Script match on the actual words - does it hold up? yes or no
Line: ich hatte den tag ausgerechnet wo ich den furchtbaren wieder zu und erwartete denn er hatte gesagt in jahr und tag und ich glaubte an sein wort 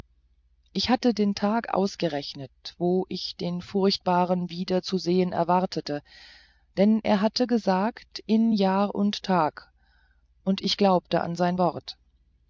no